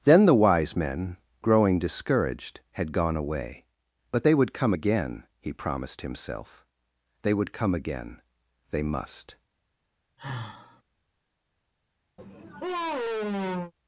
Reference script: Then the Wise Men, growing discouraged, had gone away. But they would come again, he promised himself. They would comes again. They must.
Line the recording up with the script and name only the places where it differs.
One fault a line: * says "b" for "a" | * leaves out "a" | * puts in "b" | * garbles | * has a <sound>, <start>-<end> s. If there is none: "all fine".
* says "come" for "comes"
* has a sigh, 10.2-10.8 s
* has a sigh, 12.2-13.7 s